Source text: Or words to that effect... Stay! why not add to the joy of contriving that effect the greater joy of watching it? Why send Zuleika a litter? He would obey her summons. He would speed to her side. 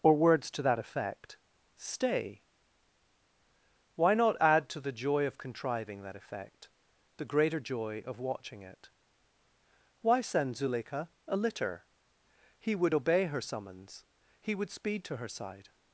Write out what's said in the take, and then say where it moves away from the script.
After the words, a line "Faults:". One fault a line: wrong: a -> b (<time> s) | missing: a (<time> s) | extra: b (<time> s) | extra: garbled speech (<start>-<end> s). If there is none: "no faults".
Or words to that effect... Stay! why not add to the joy of contriving that effect the greater joy of watching it? Why send Zuleika a litter? He would obey her summons. He would speed to her side.
Faults:
no faults